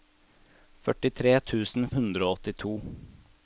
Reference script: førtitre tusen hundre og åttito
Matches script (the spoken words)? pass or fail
pass